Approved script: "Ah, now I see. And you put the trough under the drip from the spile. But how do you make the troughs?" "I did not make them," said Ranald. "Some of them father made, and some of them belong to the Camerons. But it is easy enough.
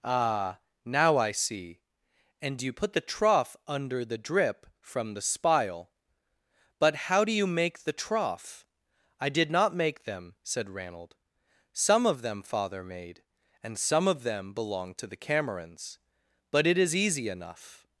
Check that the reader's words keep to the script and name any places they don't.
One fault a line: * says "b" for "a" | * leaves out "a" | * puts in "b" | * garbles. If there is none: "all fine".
* says "trough" for "troughs"